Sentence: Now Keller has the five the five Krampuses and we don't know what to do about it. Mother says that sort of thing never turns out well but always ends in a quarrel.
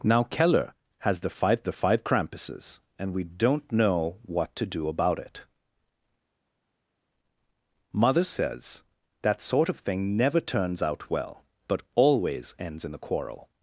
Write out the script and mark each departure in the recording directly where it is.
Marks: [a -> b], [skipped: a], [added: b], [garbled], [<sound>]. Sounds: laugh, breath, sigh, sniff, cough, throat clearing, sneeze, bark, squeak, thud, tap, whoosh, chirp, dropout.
Now Keller has the five the five Krampuses and we don't know what to do about it. Mother says that sort of thing never turns out well but always ends in a quarrel.